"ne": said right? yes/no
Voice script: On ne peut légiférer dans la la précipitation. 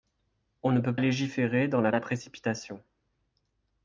yes